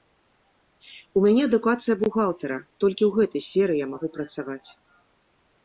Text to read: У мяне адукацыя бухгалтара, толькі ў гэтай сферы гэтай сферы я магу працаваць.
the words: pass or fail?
fail